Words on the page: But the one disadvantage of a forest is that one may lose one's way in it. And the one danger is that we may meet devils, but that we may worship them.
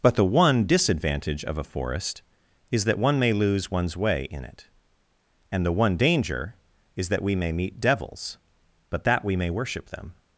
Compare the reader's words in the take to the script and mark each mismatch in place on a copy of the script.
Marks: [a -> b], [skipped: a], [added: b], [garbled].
But the one disadvantage of a forest is that one may lose one's way in it. And the one danger is that we may meet devils, but that we may worship them.